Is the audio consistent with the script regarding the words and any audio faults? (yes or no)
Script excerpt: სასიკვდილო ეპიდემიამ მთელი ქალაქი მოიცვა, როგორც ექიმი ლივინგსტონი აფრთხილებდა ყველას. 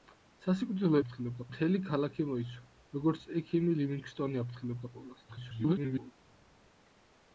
no